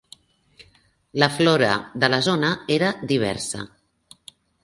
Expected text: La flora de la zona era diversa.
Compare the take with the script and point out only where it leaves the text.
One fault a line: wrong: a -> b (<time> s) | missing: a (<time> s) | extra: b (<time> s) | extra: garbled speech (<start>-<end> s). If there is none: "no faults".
no faults